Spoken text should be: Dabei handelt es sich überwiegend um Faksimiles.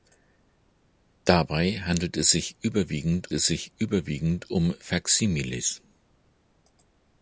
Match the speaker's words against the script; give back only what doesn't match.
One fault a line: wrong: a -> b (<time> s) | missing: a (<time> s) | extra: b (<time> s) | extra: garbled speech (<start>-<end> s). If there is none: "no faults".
extra: es sich überwiegend (3.3 s)